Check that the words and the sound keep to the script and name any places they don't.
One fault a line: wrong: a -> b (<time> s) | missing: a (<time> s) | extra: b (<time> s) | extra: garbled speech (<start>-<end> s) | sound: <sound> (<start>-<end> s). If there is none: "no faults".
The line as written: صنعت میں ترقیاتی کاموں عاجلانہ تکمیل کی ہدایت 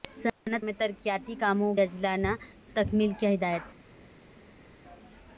no faults